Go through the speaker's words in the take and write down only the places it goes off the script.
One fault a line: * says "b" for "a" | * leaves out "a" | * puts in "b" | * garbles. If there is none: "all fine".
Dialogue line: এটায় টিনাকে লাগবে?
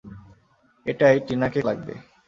all fine